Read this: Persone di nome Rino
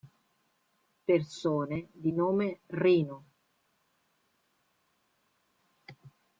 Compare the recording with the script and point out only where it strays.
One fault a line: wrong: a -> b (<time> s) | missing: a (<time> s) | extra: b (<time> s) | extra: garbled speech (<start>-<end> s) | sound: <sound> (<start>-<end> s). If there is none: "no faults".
no faults